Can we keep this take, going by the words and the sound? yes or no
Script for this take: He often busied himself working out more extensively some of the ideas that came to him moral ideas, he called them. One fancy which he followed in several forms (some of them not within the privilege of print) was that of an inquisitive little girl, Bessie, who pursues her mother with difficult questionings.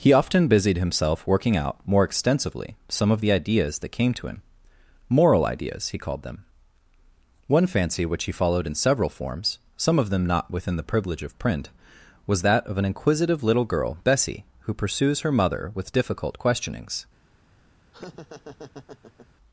no